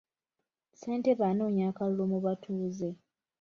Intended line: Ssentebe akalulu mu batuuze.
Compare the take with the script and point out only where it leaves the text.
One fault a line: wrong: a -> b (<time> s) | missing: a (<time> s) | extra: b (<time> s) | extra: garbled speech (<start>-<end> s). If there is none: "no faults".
extra: anoonya (1.3 s)